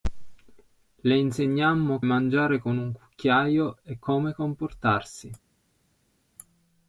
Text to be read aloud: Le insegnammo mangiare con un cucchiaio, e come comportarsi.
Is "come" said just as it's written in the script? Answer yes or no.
yes